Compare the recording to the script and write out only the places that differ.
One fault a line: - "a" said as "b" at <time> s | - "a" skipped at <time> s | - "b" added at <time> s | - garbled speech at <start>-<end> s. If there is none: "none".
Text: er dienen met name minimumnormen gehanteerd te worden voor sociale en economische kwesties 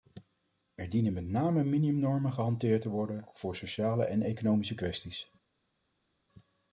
none